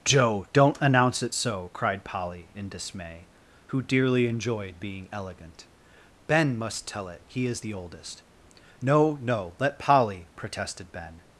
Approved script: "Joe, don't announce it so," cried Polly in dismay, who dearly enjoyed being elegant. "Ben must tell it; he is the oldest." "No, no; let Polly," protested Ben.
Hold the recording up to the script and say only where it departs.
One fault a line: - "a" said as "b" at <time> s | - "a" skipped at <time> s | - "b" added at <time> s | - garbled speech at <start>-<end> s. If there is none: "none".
none